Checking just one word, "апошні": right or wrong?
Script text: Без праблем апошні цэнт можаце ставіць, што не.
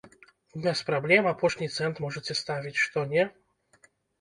right